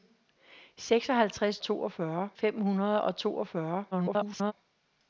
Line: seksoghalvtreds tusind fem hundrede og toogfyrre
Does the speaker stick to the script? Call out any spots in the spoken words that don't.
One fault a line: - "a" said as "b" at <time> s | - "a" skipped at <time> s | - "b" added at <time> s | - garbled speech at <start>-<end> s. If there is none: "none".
- "tusind" said as "toogfyrre" at 1.6 s
- garbled speech at 3.9-4.5 s